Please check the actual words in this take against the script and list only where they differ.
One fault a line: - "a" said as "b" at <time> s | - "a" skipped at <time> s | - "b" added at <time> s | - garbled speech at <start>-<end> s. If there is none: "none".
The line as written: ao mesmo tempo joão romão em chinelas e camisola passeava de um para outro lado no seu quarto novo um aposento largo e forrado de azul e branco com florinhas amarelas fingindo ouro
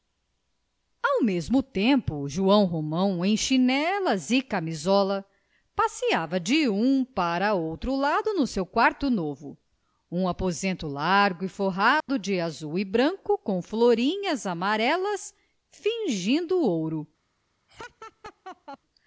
none